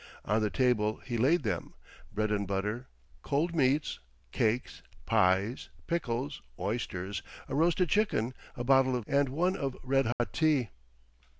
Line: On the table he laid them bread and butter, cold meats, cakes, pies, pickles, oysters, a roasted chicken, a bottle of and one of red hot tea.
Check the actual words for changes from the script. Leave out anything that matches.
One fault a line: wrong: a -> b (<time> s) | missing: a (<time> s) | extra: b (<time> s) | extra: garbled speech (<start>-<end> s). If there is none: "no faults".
no faults